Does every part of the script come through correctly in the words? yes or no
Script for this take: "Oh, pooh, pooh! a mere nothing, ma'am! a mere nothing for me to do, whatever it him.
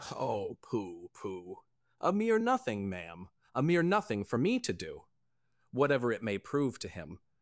no